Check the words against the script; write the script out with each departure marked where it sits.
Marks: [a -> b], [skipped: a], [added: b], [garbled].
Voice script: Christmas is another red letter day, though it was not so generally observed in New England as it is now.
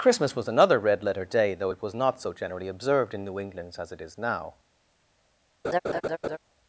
Christmas [is -> was] another red letter day, though it was not so generally observed in New England as it is now.